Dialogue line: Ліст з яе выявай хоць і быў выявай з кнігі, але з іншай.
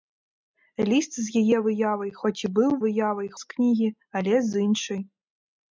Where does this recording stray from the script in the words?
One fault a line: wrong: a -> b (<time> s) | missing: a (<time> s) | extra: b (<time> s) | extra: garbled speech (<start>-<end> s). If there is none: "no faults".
no faults